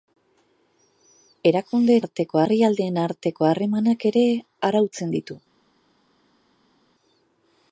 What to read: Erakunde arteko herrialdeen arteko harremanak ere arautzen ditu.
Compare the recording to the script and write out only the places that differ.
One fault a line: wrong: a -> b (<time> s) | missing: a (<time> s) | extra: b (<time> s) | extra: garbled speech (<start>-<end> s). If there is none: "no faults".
no faults